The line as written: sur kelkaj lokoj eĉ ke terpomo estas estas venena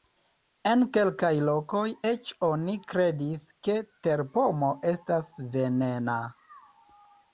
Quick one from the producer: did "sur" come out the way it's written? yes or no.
no